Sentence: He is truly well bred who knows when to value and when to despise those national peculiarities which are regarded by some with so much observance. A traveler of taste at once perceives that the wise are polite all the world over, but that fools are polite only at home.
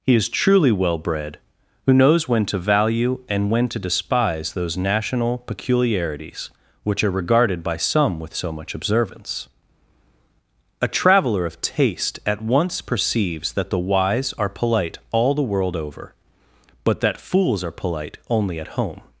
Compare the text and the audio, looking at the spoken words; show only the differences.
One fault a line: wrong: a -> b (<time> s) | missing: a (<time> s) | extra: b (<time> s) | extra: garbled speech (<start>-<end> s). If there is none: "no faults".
no faults